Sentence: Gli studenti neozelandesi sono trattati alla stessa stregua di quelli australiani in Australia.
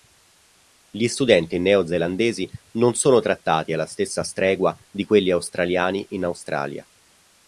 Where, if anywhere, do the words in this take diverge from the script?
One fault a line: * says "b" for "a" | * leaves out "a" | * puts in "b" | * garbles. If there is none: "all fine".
* puts in "non"